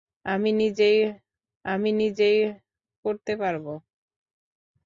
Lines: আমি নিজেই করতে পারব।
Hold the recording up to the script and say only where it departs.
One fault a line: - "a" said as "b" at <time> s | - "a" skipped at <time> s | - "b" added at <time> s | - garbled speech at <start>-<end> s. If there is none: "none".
- "আমি নিজেই" added at 1.6 s